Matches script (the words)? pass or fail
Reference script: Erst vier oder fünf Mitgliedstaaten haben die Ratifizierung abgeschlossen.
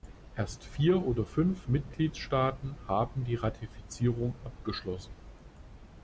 pass